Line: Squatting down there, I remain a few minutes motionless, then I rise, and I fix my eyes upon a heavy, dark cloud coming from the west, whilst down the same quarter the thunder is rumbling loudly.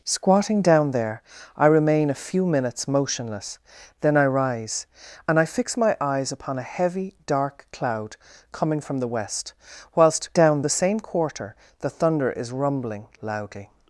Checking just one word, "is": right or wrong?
right